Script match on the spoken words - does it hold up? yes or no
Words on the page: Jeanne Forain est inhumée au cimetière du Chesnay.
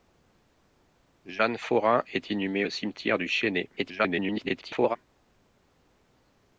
no